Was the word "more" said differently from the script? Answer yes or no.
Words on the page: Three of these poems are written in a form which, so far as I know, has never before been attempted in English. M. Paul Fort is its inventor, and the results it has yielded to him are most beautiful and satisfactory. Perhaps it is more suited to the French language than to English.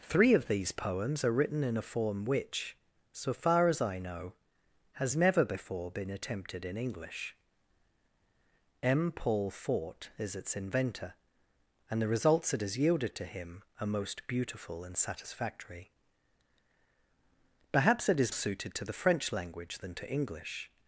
yes